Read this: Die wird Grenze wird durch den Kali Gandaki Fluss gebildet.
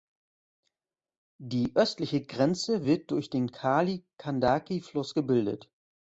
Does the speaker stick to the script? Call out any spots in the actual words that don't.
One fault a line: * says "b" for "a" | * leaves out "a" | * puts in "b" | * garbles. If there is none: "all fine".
* says "östliche" for "wird"